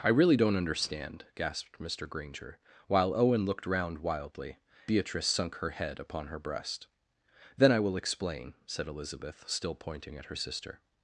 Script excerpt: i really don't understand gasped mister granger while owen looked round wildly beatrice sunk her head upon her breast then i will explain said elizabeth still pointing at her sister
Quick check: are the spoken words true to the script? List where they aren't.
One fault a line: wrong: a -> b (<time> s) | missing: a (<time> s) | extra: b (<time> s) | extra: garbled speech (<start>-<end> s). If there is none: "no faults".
no faults